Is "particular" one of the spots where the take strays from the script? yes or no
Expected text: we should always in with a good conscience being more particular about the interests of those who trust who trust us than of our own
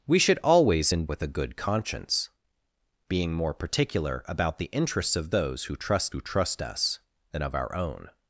no